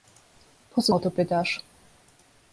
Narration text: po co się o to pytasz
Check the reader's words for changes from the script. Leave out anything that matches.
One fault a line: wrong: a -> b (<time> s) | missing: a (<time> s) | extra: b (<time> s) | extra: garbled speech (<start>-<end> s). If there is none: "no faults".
missing: się (0.9 s)